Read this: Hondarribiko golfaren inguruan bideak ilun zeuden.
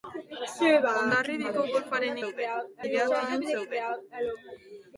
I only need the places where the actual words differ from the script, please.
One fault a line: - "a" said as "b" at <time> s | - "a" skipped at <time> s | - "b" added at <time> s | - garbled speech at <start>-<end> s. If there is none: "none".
- "inguruan" said as "zeuden" at 2.2 s